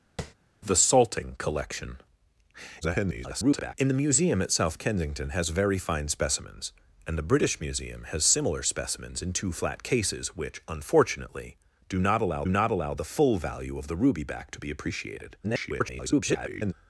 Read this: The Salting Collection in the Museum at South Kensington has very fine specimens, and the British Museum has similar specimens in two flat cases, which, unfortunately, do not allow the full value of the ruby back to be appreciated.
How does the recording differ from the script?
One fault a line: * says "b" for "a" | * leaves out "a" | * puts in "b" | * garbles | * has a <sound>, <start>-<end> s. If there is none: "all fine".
* has a tap, 0.2-0.3 s
* garbles
* puts in "not allow"
* garbles